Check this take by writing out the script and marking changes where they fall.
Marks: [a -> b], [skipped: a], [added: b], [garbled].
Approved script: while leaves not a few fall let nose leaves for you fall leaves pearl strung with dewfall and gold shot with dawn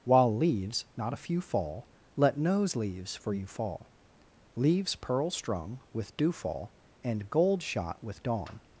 while leaves not a few fall let nose leaves for you fall leaves pearl strung with dewfall and gold shot with dawn